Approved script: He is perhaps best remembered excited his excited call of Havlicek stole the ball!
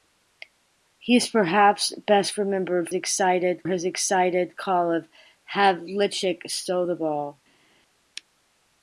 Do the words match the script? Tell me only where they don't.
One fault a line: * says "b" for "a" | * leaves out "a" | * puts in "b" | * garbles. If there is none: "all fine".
all fine